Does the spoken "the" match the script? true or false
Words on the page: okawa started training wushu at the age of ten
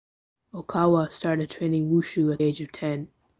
false